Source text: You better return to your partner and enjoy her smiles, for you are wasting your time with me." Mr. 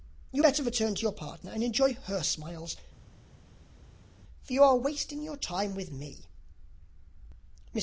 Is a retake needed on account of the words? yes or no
no